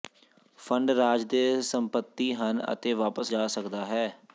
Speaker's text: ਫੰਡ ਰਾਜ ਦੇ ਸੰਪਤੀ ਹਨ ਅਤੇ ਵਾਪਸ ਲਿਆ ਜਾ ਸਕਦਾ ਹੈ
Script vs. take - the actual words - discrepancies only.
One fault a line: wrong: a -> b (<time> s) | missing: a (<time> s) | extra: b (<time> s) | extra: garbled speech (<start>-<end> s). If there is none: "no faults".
missing: ਲਿਆ (3.3 s)